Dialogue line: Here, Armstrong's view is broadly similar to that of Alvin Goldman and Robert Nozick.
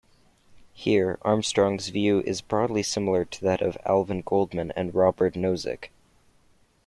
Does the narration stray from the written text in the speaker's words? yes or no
no